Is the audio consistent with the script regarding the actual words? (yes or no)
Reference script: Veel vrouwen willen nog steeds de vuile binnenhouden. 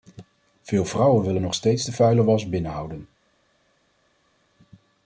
no